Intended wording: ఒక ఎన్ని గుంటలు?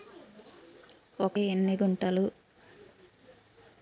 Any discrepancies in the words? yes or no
no